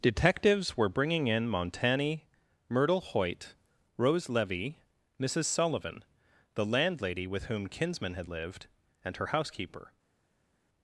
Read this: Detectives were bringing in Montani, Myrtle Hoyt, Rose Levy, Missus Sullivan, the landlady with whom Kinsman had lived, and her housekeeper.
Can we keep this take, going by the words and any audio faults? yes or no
yes